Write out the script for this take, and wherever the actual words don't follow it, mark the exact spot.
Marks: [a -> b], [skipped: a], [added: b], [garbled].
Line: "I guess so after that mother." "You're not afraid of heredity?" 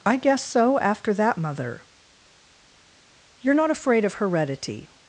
"I guess so after that mother." "You're not afraid of heredity?"